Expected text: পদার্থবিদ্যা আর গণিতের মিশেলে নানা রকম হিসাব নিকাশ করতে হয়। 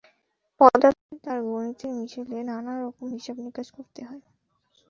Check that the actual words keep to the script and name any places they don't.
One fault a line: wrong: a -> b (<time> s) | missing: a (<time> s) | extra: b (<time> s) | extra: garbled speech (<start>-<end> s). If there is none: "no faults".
no faults